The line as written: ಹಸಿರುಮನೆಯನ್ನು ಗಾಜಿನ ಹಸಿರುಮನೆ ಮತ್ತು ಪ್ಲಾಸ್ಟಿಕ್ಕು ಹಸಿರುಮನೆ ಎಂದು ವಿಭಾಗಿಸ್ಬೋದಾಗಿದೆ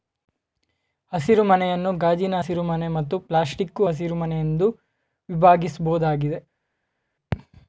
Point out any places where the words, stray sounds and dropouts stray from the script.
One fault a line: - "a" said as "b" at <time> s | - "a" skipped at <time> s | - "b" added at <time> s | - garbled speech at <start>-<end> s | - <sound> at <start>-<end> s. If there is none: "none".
none